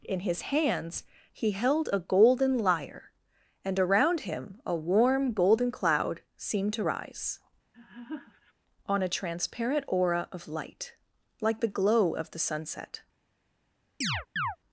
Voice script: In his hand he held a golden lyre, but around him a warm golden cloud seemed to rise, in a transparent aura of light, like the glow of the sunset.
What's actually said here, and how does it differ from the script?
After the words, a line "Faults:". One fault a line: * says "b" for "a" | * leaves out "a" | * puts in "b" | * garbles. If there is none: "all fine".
In his hands he held a golden lyre, and around him a warm golden cloud seemed to rise, on a transparent aura of light, like the glow of the sunset.
Faults:
* says "hands" for "hand"
* says "and" for "but"
* says "on" for "in"